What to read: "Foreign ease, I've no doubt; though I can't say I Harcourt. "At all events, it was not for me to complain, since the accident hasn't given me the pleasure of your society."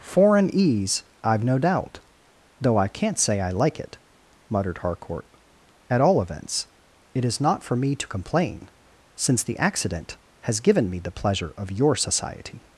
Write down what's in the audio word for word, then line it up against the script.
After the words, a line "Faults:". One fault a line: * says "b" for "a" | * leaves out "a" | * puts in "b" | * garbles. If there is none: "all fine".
"Foreign ease, I've no doubt; though I can't say I like it," muttered Harcourt. "At all events, it is not for me to complain, since the accident has given me the pleasure of your society."
Faults:
* puts in "like it muttered"
* says "is" for "was"
* says "has" for "hasn't"